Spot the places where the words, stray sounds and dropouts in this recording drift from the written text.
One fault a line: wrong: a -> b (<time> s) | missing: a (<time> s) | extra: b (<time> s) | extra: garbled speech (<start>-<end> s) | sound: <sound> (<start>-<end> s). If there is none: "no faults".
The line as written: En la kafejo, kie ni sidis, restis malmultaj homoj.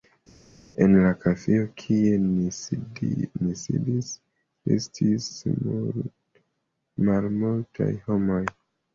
no faults